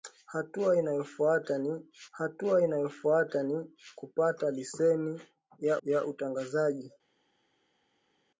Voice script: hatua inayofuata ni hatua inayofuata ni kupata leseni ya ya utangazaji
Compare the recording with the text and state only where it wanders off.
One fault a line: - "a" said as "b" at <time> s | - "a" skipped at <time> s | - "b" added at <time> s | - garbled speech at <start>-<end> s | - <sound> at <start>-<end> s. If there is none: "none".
none